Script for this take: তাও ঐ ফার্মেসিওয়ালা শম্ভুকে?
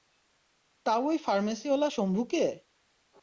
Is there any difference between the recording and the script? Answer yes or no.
no